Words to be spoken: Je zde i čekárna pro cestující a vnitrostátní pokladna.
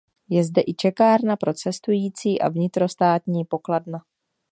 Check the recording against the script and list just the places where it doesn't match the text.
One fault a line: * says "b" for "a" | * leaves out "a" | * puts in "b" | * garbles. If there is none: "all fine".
all fine